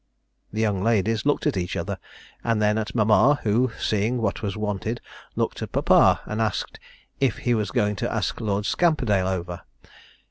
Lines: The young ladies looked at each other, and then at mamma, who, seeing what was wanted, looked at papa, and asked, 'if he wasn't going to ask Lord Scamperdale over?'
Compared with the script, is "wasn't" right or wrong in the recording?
wrong